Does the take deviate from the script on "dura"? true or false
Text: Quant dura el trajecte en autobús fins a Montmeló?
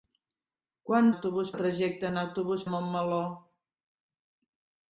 true